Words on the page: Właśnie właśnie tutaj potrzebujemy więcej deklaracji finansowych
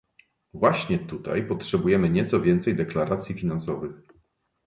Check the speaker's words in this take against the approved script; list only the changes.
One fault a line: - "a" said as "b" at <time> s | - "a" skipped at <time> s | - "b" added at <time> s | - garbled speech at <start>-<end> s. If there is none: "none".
- "właśnie" skipped at 1.0 s
- "nieco" added at 2.1 s